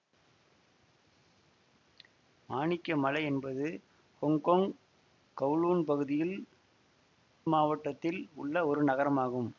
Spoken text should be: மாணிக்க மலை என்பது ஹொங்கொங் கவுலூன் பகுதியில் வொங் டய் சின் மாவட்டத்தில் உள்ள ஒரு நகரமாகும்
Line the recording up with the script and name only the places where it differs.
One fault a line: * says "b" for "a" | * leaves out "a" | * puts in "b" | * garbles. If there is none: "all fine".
* leaves out "வொங் டய் சின்"